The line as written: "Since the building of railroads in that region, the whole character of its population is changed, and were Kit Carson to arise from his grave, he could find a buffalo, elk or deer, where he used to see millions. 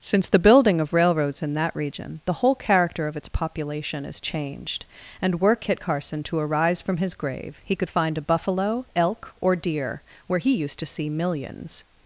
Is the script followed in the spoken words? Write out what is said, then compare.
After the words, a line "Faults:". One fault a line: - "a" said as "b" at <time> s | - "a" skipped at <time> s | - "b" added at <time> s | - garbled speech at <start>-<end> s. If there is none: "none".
"Since the building of railroads in that region, the whole character of its population is changed, and were Kit Carson to arise from his grave, he could find a buffalo, elk or deer, where he used to see millions.
Faults:
none